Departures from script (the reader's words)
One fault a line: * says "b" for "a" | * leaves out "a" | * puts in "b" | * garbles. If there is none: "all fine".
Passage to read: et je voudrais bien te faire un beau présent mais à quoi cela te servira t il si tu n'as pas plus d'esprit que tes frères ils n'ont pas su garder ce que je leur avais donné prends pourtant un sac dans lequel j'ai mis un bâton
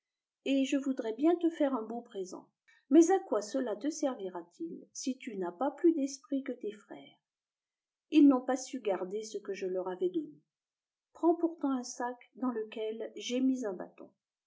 all fine